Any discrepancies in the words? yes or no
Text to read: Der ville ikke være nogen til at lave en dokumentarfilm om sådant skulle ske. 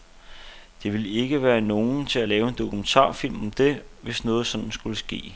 yes